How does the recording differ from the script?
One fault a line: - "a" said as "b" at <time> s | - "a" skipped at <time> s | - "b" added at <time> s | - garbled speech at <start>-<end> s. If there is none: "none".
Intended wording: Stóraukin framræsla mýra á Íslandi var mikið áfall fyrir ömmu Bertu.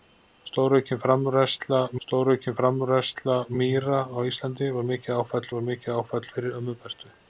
- "stóraukin framræsla" added at 2.0 s
- "var mikið áfall" added at 5.5 s